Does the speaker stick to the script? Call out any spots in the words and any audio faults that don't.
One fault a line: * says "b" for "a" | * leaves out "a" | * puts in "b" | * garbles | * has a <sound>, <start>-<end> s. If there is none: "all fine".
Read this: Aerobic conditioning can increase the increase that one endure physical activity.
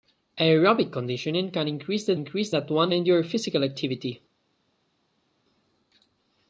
all fine